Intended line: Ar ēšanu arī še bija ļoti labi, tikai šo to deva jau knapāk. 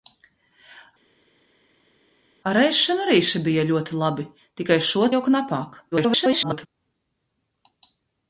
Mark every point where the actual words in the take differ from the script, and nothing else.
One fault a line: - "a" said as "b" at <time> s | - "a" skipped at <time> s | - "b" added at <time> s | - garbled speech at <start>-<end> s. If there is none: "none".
- "to deva" skipped at 5.1 s
- garbled speech at 5.9-6.7 s